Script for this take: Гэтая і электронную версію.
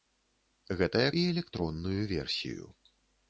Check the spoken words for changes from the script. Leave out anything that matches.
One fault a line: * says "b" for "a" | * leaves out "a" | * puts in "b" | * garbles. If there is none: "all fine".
all fine